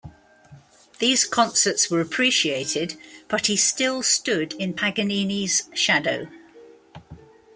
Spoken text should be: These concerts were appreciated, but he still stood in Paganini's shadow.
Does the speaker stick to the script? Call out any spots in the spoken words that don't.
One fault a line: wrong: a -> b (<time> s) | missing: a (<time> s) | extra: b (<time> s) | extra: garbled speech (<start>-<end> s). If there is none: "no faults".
no faults